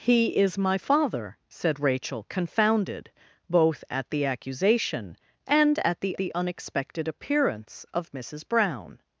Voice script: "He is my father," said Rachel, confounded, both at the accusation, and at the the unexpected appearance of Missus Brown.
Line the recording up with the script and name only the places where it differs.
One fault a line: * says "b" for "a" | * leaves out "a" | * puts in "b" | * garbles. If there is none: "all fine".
all fine